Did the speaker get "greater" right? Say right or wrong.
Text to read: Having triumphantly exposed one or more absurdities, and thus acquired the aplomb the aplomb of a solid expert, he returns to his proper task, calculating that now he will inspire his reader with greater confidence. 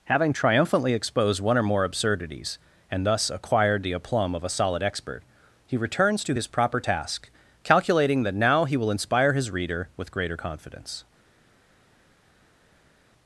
right